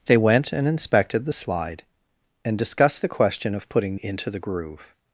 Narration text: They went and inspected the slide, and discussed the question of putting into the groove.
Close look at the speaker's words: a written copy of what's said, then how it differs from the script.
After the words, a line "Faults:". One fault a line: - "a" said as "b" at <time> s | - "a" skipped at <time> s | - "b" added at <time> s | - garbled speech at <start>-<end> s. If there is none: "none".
They went and inspected the slide, and discussed the question of putting into the groove.
Faults:
none